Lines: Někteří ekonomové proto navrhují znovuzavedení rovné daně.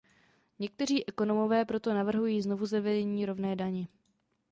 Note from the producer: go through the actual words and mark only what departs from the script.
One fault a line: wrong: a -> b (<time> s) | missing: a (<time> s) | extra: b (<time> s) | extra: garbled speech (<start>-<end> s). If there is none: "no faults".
no faults